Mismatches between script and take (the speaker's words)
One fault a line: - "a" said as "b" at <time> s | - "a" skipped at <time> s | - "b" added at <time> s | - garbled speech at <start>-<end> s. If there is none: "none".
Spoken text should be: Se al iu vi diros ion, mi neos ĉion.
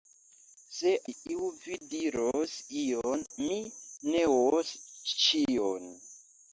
- "al" skipped at 0.9 s